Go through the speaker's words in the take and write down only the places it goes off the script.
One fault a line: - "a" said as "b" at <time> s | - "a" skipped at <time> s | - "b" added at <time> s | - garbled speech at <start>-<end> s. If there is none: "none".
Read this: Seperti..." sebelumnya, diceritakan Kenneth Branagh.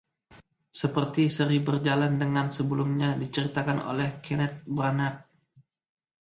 - "seri Berjalan dengan" added at 1.3 s
- "oleh" added at 3.8 s